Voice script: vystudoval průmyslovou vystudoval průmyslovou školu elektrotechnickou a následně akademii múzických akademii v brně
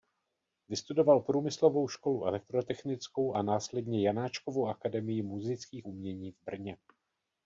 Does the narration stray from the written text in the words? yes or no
yes